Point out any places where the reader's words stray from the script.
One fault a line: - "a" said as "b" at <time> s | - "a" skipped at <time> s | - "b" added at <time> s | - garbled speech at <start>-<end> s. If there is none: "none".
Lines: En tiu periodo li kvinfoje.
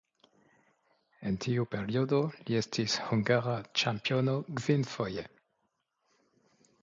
- "estis hungara ĉampiono" added at 2.6 s